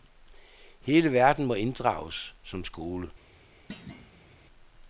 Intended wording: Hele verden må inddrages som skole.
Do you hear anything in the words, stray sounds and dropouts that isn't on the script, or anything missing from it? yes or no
yes